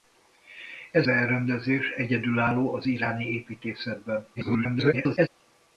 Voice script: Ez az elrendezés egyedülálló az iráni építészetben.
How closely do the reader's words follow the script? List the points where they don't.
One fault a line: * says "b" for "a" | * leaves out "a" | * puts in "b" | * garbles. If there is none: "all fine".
* leaves out "az"
* garbles